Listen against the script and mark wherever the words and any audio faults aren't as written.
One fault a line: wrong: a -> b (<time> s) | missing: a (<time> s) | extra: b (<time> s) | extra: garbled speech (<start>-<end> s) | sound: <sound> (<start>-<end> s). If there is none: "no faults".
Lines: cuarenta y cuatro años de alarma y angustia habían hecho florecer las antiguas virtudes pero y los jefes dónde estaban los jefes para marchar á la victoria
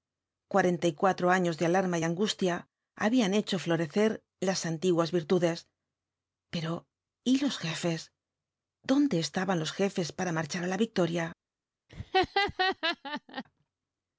sound: laugh (11.9-13.4 s)